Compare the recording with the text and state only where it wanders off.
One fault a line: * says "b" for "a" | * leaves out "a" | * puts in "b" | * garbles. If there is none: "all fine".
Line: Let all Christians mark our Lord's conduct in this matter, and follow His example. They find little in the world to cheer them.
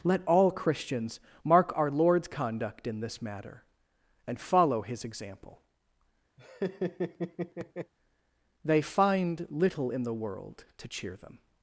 all fine